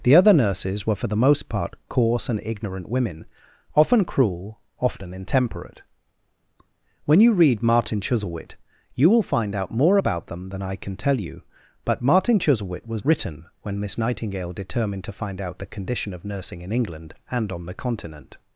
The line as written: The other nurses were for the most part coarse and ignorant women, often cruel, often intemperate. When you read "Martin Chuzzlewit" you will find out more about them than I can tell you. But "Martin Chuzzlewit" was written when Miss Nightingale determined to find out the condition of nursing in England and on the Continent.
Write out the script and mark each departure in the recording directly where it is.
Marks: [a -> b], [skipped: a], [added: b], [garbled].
The other nurses were for the most part coarse and ignorant women, often cruel, often intemperate. When you read "Martin Chuzzlewit" you will find out more about them than I can tell you. But "Martin Chuzzlewit" was written when Miss Nightingale determined to find out the condition of nursing in England and on the Continent.